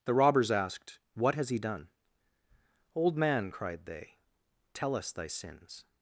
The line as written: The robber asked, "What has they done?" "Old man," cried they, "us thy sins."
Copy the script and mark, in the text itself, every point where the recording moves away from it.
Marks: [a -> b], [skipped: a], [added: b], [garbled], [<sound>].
The [robber -> robbers] asked, "What has [they -> he] done?" "Old man," cried they, [added: tell] "us thy sins."